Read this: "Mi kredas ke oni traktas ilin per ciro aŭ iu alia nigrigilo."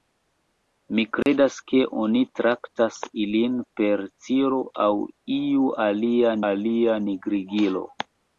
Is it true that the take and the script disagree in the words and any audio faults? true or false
true